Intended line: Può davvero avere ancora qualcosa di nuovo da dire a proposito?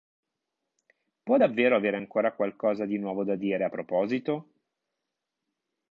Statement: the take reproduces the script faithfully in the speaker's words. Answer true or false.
true